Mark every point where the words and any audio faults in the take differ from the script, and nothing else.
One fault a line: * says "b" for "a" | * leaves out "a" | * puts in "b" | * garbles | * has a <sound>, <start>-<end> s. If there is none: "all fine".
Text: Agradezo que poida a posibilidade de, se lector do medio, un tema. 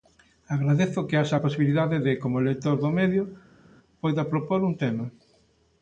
* says "haxa" for "poida"
* says "como" for "se"
* puts in "poida propor"